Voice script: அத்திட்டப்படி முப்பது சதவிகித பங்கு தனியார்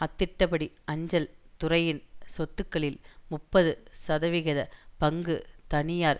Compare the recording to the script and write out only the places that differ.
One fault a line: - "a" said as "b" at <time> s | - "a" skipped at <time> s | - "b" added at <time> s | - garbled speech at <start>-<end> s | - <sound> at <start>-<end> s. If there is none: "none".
- "அஞ்சல் துறையின் சொத்துக்களில்" added at 0.8 s